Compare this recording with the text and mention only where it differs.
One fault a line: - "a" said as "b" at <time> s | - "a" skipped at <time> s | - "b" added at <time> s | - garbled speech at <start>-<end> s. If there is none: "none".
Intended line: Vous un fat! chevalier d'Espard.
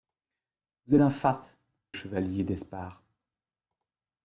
none